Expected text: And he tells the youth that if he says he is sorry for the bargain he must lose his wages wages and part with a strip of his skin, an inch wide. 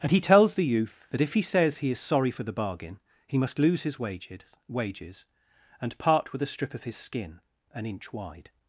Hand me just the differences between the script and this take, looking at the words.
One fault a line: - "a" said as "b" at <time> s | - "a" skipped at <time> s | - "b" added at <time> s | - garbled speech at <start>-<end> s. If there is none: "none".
none